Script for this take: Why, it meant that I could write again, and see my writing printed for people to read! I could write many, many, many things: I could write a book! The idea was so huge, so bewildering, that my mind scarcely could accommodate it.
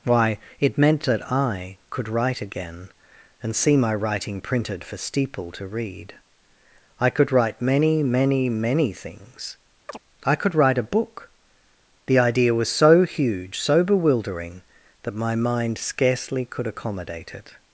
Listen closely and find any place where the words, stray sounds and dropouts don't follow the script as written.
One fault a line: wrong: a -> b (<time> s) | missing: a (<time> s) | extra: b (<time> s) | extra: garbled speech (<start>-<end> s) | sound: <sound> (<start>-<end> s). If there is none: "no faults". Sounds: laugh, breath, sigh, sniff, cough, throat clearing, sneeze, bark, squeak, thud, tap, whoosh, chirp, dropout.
wrong: people -> steeple (5.0 s)
sound: chirp (9.9-10.0 s)